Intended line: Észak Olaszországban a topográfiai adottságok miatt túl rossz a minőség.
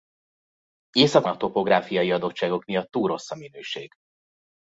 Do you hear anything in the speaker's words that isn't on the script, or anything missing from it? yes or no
yes